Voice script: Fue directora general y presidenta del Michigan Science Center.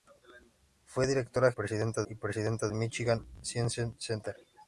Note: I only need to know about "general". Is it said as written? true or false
false